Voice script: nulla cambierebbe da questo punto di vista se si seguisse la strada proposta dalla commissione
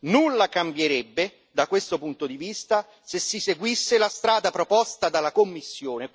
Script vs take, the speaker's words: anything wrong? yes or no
no